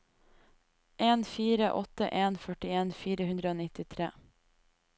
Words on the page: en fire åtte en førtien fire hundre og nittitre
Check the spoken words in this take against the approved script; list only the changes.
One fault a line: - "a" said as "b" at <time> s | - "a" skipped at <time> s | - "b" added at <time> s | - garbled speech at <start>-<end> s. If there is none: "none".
none